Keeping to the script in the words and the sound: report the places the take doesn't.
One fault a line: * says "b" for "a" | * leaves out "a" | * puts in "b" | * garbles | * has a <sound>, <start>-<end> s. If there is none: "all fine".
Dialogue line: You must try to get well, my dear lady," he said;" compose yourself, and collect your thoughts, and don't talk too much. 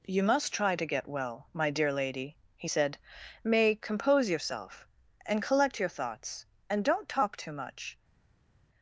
* puts in "may"